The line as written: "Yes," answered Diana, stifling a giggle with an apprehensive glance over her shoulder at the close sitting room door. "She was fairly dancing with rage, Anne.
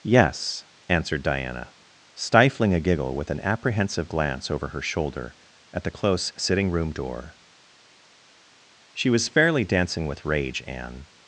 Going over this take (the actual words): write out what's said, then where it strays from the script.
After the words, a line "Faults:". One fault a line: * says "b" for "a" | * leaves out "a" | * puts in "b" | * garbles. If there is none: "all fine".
"Yes," answered Diana, stifling a giggle with an apprehensive glance over her shoulder at the close sitting room door. "She was fairly dancing with rage, Anne.
Faults:
all fine